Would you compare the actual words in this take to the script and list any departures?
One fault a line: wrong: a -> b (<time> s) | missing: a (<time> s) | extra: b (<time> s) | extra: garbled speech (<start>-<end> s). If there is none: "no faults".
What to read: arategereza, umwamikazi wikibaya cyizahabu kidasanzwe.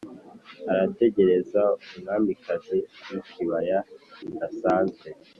missing: cyizahabu (3.8 s)